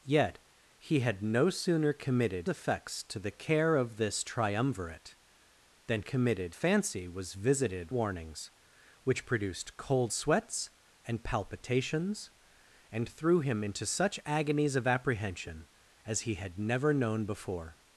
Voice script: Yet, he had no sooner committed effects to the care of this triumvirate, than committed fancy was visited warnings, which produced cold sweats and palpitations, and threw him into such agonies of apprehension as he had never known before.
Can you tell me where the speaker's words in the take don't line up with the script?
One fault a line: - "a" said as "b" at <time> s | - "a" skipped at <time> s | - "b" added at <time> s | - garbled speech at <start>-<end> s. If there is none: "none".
none